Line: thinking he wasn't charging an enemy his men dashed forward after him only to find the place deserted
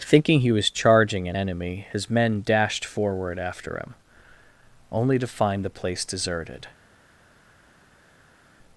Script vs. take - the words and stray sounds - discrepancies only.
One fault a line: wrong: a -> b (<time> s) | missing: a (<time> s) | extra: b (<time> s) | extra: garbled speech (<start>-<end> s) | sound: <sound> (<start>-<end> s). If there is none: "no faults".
wrong: wasn't -> was (0.5 s)